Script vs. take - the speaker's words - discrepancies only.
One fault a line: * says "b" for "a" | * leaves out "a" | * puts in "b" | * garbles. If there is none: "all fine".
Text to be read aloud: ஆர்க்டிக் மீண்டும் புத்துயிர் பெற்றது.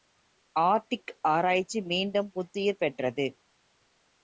* puts in "ஆராய்ச்சி"